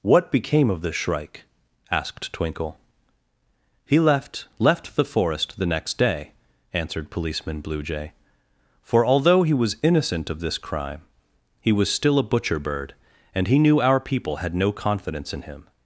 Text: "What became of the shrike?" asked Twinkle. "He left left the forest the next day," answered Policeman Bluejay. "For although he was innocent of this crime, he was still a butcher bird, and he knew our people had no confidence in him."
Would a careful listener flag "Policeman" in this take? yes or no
no